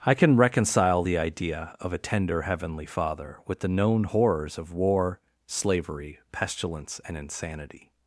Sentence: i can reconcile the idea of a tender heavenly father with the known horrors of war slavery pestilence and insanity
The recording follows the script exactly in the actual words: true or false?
true